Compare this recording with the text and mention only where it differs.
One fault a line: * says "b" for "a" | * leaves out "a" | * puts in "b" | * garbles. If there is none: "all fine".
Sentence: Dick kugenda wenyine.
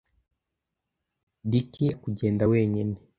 all fine